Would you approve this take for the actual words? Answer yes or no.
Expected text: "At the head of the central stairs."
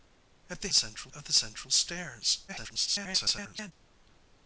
no